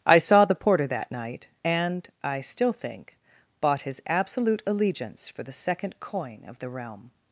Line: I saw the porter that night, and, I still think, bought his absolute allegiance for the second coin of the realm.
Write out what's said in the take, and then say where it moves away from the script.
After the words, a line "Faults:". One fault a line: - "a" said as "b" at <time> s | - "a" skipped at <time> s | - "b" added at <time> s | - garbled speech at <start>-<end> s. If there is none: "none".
I saw the porter that night, and, I still think, bought his absolute allegiance for the second coin of the realm.
Faults:
none